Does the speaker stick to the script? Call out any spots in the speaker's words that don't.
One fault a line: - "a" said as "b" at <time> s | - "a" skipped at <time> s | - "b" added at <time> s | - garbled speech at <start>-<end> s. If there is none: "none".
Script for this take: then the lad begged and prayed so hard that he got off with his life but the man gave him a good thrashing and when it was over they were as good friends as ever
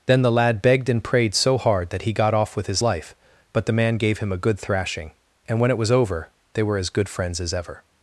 none